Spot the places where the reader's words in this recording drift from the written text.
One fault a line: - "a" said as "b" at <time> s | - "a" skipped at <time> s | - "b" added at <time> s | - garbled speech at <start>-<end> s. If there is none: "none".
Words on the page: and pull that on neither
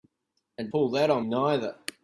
none